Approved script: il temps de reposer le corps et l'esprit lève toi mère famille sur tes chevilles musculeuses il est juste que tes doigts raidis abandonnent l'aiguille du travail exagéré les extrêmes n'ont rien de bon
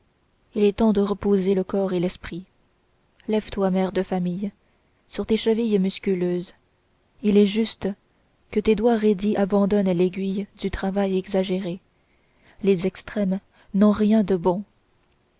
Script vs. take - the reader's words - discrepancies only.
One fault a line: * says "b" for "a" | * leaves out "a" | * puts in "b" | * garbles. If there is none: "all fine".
* puts in "est"
* puts in "de"